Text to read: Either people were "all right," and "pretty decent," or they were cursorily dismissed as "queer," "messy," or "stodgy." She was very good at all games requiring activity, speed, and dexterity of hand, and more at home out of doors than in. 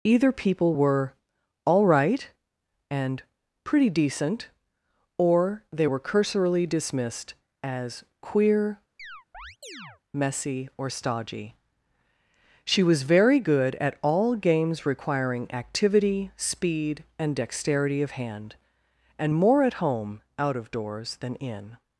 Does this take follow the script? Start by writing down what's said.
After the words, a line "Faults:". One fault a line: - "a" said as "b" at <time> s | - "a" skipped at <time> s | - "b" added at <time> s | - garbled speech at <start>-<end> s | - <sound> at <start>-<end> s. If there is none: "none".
Either people were "all right," and "pretty decent," or they were cursorily dismissed as "queer," "messy," or "stodgy." She was very good at all games requiring activity, speed, and dexterity of hand, and more at home out of doors than in.
Faults:
- chirp at 9.0-10.0 s